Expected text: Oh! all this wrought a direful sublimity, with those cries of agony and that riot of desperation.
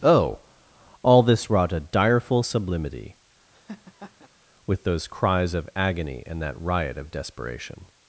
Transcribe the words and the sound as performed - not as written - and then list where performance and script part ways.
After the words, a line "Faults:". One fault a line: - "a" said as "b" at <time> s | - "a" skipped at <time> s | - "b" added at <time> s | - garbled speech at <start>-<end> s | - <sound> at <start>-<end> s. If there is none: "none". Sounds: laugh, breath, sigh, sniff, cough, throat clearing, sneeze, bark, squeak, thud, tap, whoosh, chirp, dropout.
Oh! all this wrought a direful sublimity, with those cries of agony and that riot of desperation.
Faults:
- laugh at 3.5-4.3 s